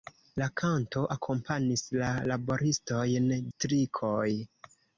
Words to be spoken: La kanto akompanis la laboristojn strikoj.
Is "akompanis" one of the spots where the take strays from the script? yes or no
no